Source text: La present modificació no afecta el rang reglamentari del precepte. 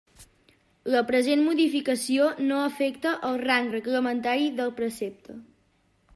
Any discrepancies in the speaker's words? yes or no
no